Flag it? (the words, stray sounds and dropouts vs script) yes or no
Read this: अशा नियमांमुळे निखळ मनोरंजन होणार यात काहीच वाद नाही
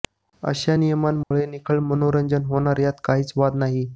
yes